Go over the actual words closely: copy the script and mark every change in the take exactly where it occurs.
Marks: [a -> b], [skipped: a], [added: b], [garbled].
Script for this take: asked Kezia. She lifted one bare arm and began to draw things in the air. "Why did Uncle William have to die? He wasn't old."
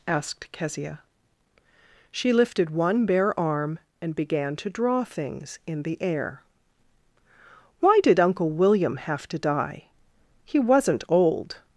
asked Kezia. She lifted one bare arm and began to draw things in the air. "Why did Uncle William have to die? He wasn't old."